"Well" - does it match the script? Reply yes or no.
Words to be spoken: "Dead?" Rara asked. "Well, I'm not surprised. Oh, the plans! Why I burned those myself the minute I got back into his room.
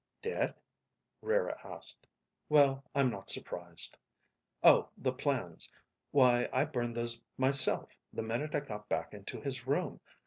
yes